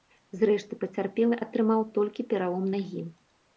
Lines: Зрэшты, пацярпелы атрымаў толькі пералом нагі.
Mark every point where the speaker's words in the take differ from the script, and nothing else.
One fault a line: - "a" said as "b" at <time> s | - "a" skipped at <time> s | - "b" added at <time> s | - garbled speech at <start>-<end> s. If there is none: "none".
none